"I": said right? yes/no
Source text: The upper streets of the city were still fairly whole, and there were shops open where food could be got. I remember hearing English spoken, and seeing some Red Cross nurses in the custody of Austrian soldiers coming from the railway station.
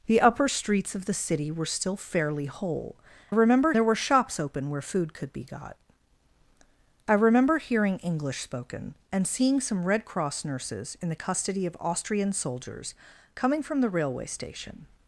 yes